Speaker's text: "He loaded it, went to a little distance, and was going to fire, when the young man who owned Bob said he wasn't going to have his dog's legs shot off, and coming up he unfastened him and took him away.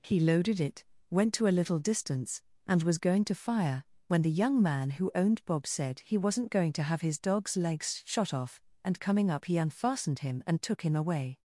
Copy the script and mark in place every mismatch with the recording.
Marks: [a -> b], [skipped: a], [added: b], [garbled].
"He loaded it, went to a little distance, and was going to fire, when the young man who owned Bob said he wasn't going to have his dog's legs shot off, and coming up he unfastened him and took him away.